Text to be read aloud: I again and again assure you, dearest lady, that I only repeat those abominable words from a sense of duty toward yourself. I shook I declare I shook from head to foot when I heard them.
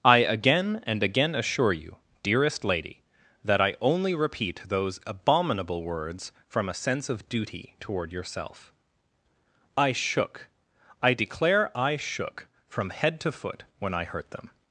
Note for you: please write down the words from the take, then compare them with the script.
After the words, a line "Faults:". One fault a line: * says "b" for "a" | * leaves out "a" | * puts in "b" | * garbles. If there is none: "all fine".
I again and again assure you, dearest lady, that I only repeat those abominable words from a sense of duty toward yourself. I shook I declare I shook from head to foot when I hurt them.
Faults:
* says "hurt" for "heard"